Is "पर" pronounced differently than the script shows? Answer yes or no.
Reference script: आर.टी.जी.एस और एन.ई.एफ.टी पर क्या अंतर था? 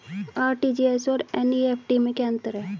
yes